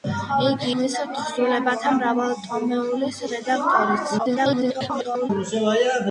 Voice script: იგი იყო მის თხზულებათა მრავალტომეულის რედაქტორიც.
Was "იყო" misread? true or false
true